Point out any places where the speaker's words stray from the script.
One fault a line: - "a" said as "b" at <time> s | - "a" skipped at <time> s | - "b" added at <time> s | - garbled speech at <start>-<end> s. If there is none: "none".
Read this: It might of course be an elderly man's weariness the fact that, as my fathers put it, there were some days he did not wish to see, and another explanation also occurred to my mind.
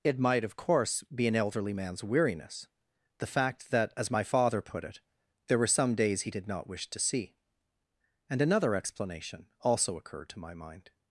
- "fathers" said as "father" at 4.2 s